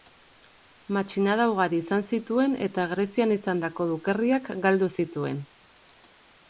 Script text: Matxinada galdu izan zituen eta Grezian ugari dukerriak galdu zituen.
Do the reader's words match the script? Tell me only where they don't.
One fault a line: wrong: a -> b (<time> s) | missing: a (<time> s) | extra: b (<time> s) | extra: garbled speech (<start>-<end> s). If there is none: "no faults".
wrong: galdu -> ugari (1.5 s)
wrong: ugari -> izandako (3.4 s)